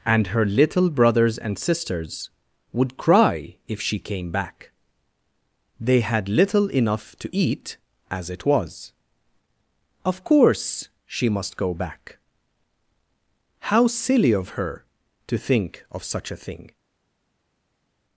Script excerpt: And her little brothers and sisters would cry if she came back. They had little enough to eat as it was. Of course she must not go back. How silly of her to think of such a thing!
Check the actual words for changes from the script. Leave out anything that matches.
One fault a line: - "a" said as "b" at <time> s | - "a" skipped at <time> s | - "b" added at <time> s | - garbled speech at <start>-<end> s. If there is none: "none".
- "not" skipped at 11.6 s